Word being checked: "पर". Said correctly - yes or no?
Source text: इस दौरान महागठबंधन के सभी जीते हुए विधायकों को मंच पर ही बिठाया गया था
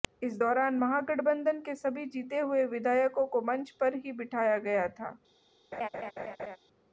yes